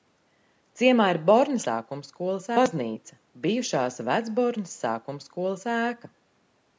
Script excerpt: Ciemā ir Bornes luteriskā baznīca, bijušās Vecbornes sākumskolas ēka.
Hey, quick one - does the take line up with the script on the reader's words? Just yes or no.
no